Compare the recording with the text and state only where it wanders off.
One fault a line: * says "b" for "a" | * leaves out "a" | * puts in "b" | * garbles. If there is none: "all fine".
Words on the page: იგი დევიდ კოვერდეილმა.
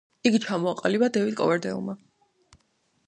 * puts in "ჩამოაყალიბა"